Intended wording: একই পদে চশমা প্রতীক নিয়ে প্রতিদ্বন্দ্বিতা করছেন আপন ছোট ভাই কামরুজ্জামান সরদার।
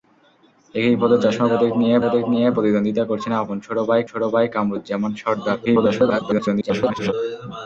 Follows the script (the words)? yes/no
no